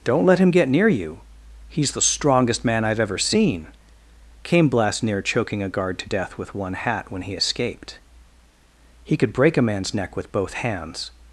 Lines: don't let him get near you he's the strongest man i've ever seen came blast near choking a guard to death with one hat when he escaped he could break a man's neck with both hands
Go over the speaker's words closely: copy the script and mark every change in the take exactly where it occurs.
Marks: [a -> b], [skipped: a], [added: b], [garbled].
don't let him get near you he's the strongest man i've ever seen came blast near choking a guard to death with one hat when he escaped he could break a man's neck with both hands